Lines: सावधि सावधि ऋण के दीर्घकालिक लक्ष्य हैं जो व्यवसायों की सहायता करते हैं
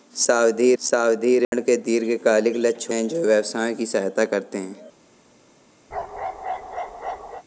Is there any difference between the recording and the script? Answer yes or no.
no